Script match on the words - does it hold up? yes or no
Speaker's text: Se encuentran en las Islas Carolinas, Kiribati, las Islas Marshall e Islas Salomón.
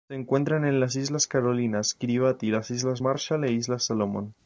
yes